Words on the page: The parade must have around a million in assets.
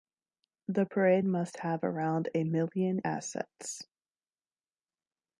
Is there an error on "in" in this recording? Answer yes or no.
yes